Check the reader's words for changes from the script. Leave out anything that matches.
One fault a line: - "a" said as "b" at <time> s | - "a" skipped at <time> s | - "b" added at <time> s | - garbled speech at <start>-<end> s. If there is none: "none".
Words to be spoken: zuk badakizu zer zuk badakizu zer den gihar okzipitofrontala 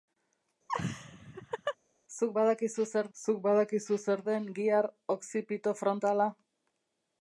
none